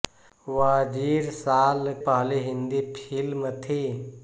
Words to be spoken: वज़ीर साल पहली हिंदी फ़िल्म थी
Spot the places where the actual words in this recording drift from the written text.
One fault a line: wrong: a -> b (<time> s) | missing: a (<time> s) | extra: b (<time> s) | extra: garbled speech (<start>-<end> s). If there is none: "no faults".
no faults